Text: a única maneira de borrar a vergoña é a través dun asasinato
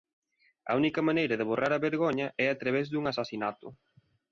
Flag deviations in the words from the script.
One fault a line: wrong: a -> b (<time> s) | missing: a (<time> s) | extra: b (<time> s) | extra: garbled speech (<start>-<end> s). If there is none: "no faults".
no faults